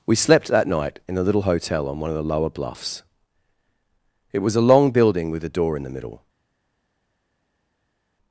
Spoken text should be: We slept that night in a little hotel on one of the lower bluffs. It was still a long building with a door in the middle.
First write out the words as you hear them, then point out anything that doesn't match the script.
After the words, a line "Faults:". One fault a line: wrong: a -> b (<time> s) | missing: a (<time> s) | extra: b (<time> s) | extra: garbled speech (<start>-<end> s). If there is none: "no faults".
We slept that night in a little hotel on one of the lower bluffs. It was a long building with a door in the middle.
Faults:
missing: still (4.5 s)